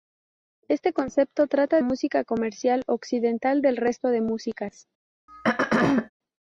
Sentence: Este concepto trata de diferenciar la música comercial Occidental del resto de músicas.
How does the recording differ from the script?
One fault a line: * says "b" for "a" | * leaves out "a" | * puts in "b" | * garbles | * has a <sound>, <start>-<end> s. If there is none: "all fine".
* leaves out "de diferenciar la"
* has a throat clearing, 5.3-6.1 s